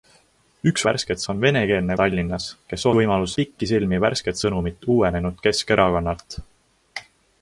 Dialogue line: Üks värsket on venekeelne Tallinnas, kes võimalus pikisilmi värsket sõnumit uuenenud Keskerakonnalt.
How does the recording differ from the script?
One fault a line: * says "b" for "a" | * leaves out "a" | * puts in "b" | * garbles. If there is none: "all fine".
all fine